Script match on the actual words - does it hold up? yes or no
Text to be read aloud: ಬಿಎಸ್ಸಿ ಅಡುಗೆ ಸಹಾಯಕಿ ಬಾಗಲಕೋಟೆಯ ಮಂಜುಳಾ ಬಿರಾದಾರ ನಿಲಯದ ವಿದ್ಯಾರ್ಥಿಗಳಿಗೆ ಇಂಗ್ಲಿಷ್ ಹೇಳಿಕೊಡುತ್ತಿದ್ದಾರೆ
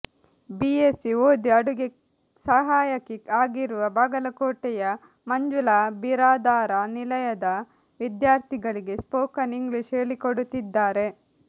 no